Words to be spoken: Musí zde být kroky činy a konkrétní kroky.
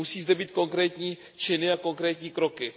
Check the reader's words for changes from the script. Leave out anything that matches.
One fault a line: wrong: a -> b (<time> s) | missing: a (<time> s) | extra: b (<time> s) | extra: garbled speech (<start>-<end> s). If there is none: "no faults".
wrong: kroky -> konkrétní (0.5 s)